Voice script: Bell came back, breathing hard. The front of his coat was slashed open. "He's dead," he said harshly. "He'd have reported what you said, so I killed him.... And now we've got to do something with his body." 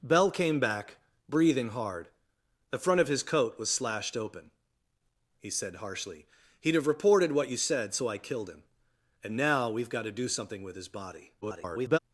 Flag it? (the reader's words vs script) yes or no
yes